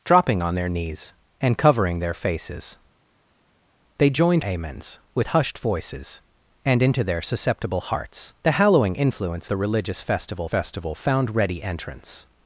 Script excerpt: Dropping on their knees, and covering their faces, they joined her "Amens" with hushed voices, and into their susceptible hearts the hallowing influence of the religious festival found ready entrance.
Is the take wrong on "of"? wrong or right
wrong